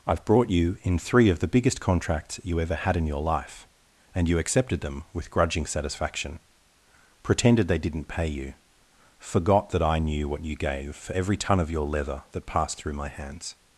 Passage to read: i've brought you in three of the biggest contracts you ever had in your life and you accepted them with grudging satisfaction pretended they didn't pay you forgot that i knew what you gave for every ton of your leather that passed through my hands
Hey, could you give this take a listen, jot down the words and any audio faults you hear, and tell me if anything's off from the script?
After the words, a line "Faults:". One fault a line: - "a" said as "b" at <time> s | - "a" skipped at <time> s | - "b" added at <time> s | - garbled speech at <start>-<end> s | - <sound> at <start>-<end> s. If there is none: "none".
i've brought you in three of the biggest contracts you ever had in your life and you accepted them with grudging satisfaction pretended they didn't pay you forgot that i knew what you gave for every ton of your leather that passed through my hands
Faults:
none